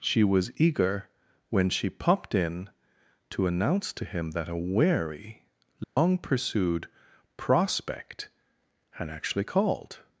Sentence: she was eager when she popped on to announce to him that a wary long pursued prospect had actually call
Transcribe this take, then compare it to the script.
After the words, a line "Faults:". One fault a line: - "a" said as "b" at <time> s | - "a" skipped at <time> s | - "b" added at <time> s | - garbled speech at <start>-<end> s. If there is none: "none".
she was eager when she popped in to announce to him that a wary long pursued prospect had actually called
Faults:
- "on" said as "in" at 2.3 s
- "call" said as "called" at 9.4 s